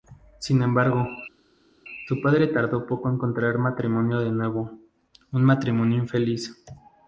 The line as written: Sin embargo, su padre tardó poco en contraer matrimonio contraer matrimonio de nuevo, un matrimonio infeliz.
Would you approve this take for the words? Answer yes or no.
no